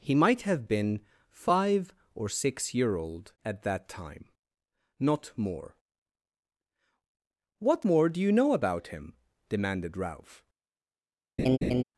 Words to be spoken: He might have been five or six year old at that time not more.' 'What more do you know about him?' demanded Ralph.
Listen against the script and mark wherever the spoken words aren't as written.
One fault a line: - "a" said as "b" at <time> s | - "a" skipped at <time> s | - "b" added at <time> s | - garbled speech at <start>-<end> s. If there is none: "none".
none